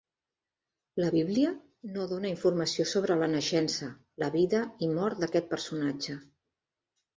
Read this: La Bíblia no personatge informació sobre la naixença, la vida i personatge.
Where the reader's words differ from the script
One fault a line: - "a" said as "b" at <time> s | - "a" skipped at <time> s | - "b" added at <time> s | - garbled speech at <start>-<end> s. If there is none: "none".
- "personatge" said as "dóna" at 2.1 s
- "mort d'aquest" added at 4.9 s